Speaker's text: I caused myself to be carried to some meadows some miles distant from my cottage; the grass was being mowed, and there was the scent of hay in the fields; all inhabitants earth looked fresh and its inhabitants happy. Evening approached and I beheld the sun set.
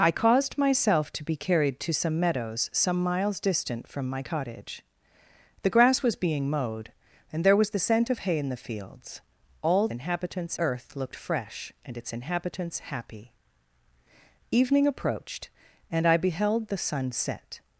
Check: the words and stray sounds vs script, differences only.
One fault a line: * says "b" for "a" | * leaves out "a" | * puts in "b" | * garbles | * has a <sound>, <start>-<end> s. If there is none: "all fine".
all fine